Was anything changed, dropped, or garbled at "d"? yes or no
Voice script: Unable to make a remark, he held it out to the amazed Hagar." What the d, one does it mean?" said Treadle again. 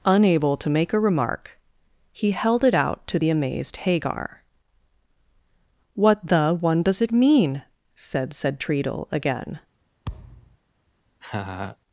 yes